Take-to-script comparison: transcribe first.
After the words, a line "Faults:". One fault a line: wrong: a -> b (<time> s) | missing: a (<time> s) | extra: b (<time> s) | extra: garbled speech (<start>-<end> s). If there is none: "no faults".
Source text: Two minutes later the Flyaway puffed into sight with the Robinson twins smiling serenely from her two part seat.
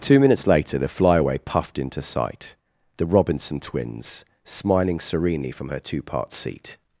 Two minutes later the Flyaway puffed into sight the Robinson twins smiling serenely from her two part seat.
Faults:
missing: with (2.5 s)